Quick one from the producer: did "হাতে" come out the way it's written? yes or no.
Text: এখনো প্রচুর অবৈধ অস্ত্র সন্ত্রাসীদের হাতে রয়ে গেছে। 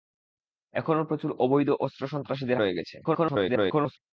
no